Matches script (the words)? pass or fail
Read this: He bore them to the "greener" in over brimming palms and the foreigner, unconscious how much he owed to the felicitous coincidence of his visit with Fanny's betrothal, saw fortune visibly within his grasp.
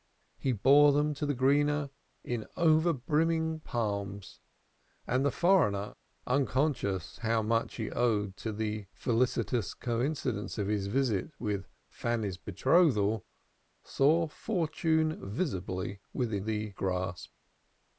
fail